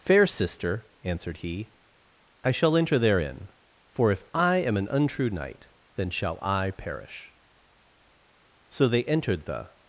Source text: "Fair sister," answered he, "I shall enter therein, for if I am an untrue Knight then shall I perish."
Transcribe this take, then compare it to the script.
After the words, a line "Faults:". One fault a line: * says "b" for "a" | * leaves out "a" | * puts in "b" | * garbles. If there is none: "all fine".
"Fair sister," answered he, "I shall enter therein, for if I am an untrue Knight then shall I perish." So they entered the
Faults:
* puts in "So they entered the"